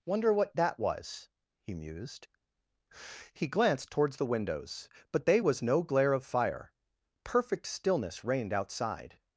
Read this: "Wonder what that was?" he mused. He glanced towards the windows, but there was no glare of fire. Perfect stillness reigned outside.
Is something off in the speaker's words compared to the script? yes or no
yes